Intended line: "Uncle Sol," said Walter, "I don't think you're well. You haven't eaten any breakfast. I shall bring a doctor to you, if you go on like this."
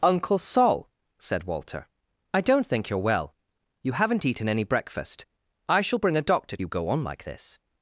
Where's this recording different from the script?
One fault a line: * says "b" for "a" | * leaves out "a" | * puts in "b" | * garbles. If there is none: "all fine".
* leaves out "to you if"